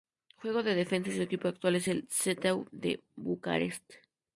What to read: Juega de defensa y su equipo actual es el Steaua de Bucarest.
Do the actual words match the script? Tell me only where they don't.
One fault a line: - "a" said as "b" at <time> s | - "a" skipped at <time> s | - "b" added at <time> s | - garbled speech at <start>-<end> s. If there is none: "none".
none